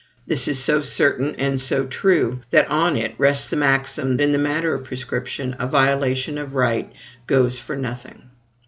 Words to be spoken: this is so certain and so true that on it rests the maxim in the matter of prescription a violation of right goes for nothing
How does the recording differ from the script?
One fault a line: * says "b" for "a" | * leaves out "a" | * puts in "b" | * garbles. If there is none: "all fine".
all fine